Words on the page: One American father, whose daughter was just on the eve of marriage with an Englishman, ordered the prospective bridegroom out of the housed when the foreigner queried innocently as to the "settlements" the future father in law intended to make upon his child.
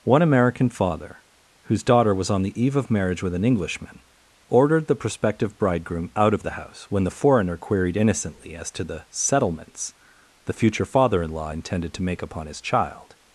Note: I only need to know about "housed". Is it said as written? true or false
false